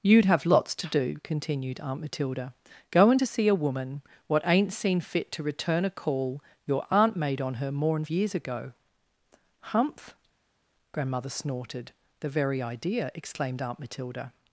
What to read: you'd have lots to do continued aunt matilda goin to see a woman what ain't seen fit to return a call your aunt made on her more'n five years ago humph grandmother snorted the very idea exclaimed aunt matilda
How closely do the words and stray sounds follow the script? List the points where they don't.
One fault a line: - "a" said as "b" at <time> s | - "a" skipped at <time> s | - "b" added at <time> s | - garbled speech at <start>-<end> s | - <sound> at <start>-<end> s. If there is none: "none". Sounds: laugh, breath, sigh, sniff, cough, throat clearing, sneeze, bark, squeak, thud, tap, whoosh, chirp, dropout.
- "five" skipped at 8.0 s